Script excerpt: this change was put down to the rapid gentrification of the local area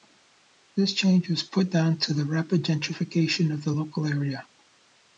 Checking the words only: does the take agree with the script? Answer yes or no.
yes